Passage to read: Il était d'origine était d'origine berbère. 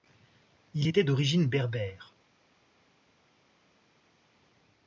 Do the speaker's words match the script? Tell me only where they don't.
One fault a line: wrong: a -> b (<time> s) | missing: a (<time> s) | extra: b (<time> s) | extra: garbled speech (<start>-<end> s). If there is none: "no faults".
missing: était d'origine (1.5 s)